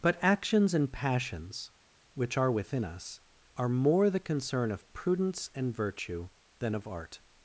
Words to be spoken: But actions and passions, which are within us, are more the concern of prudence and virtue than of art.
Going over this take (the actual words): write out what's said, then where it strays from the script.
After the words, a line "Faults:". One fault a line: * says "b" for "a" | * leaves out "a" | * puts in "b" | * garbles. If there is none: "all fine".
But actions and passions, which are within us, are more the concern of prudence and virtue than of art.
Faults:
all fine